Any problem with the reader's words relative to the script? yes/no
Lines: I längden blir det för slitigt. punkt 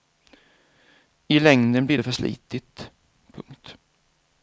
no